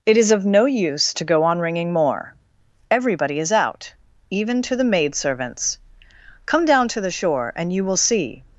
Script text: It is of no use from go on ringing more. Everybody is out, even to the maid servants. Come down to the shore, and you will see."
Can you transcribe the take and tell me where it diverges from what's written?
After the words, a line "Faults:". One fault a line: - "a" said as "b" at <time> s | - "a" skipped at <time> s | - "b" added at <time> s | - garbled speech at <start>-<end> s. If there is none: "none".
It is of no use to go on ringing more. Everybody is out, even to the maid servants. Come down to the shore, and you will see."
Faults:
- "from" said as "to" at 1.1 s